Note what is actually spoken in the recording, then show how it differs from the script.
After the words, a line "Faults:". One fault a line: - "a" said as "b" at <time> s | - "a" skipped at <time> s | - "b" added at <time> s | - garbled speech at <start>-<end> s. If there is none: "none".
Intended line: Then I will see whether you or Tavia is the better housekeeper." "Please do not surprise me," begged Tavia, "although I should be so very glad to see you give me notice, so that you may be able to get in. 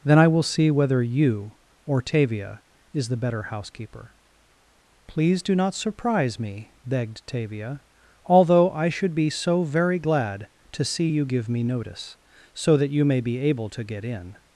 Then I will see whether you or Tavia is the better housekeeper." "Please do not surprise me," begged Tavia, "although I should be so very glad to see you give me notice, so that you may be able to get in.
Faults:
none